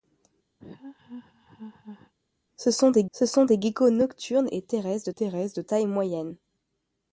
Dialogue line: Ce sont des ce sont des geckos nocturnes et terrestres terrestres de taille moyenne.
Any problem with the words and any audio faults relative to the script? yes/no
yes